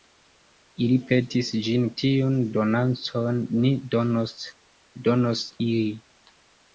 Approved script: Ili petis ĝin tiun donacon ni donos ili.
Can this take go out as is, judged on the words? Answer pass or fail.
pass